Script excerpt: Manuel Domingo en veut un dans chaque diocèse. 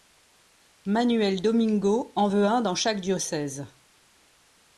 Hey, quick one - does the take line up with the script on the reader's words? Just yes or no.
yes